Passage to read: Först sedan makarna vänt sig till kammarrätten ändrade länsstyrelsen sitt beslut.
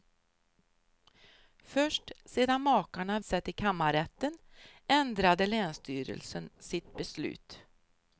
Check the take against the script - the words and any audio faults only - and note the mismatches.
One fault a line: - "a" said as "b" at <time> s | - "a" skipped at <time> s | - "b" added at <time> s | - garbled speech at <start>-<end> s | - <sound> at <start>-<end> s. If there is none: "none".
- "vänt" skipped at 3.2 s